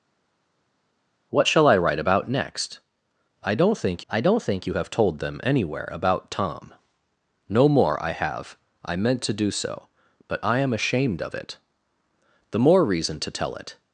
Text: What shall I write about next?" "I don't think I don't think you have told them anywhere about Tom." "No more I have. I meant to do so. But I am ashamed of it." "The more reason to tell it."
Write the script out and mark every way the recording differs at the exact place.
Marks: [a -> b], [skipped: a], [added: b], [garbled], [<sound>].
What shall I write about next?" "I don't think I don't think you have told them anywhere about Tom." "No more I have. I meant to do so. But I am ashamed of it." "The more reason to tell it."